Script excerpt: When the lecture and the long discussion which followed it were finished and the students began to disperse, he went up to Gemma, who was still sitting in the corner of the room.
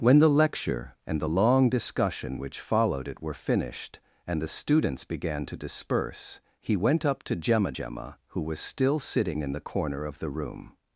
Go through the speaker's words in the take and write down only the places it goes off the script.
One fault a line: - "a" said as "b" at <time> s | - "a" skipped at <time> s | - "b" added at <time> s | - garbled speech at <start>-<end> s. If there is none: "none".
- "Gemma" added at 7.7 s